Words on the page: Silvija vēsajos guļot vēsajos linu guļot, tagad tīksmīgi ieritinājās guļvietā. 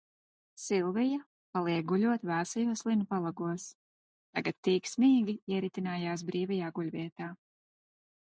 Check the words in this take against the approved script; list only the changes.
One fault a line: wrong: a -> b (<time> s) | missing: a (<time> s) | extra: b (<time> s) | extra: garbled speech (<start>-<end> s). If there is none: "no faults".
wrong: vēsajos -> paliek (1.6 s)
wrong: guļot -> palagos (3.1 s)
extra: brīvajā (6.3 s)